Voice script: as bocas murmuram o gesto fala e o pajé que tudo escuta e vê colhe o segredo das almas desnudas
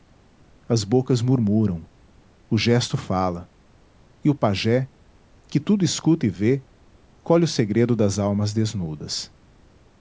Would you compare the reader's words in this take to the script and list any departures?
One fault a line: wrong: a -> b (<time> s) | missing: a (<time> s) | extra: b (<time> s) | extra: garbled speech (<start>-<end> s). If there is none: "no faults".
no faults